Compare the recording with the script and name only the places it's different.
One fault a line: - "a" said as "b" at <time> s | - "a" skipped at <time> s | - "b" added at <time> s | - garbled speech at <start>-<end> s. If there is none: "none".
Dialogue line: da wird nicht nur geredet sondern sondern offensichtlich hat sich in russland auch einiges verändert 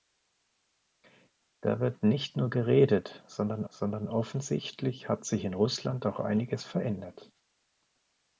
none